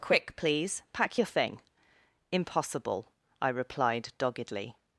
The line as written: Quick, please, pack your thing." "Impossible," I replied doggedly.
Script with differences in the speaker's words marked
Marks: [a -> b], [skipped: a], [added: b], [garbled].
Quick, please, pack your thing." "Impossible," I replied doggedly.